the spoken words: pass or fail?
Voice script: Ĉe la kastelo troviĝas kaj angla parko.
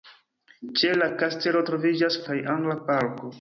pass